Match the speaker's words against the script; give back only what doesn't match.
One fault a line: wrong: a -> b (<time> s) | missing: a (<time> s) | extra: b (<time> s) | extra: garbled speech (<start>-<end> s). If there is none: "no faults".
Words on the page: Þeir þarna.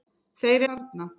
no faults